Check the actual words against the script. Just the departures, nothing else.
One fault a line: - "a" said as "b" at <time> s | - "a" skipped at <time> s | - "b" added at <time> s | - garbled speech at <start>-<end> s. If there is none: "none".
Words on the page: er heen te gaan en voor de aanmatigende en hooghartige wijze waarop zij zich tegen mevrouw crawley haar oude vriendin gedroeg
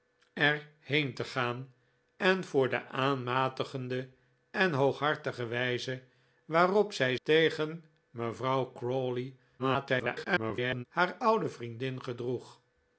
- "zich" skipped at 7.2 s
- garbled speech at 9.6-10.9 s